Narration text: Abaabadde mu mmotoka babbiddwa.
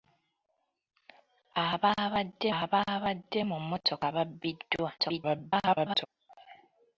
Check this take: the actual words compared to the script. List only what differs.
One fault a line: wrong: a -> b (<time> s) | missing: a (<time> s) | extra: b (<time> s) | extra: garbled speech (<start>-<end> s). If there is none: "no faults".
extra: abaabadde (2.6 s)
extra: garbled speech (5.0-6.1 s)